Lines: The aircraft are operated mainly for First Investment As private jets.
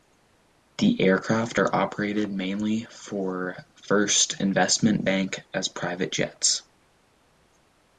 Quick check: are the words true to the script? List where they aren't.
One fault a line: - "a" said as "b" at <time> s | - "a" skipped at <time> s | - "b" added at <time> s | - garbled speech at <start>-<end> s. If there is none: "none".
- "Bank" added at 5.0 s